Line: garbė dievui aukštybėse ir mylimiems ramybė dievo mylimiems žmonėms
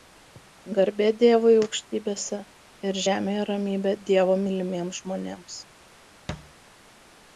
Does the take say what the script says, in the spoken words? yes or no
no